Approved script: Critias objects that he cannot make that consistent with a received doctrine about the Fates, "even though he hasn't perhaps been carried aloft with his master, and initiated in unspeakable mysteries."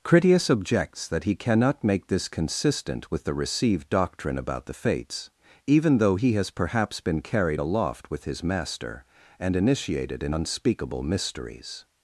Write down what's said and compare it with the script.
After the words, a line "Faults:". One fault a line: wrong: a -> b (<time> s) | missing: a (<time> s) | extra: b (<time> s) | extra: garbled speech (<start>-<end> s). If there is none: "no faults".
Critias objects that he cannot make this consistent with the received doctrine about the Fates, "even though he has perhaps been carried aloft with his master, and initiated in unspeakable mysteries."
Faults:
wrong: that -> this (2.1 s)
wrong: a -> the (3.2 s)
wrong: hasn't -> has (6.3 s)